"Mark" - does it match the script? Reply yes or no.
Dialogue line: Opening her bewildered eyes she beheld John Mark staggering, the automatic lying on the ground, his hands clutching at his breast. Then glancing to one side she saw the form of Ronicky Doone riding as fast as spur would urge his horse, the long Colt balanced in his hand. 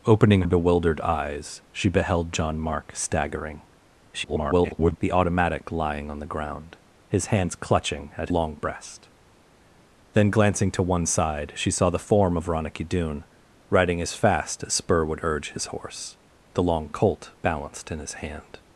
yes